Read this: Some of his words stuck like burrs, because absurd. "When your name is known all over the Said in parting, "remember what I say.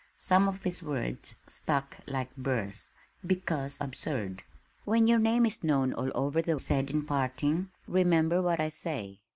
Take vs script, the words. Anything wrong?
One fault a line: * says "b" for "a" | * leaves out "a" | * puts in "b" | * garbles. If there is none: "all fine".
all fine